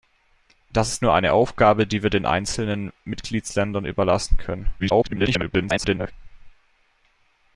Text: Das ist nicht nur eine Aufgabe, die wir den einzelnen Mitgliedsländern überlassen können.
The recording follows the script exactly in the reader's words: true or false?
false